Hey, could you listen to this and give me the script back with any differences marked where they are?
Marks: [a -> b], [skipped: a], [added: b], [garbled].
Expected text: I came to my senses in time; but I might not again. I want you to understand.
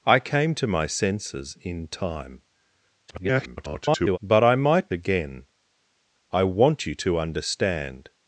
I came to my senses in time; [garbled] but I might [skipped: not] again. I want you to understand.